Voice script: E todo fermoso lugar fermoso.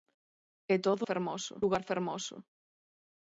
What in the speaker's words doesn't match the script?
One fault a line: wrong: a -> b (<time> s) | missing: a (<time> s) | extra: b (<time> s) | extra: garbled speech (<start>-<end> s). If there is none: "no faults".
no faults